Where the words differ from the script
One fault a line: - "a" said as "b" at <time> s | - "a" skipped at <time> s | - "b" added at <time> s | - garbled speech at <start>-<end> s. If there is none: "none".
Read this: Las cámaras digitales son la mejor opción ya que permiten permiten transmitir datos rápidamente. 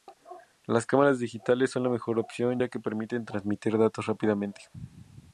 - "permiten" skipped at 3.2 s